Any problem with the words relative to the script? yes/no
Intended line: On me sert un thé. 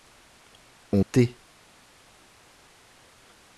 yes